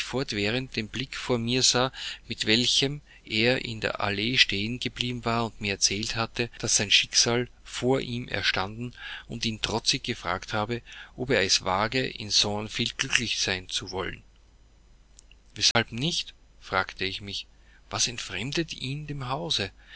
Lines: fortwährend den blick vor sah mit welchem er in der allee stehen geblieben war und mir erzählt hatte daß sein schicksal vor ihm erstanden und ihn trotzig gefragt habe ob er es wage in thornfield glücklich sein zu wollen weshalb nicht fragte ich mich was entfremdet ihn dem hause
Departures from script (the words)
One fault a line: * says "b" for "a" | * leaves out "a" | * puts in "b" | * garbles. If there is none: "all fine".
* puts in "mir"